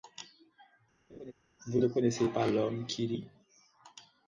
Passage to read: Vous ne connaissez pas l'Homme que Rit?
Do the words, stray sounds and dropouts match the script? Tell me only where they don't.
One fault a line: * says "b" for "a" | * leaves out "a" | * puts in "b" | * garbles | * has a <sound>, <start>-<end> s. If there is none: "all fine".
* has a laugh, 1.1-1.3 s
* says "qui" for "que"